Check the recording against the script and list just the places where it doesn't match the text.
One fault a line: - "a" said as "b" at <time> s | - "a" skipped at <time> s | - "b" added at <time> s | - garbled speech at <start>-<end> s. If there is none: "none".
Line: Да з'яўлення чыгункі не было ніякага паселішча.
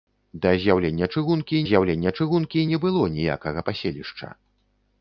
- "з'яўлення чыгункі" added at 1.7 s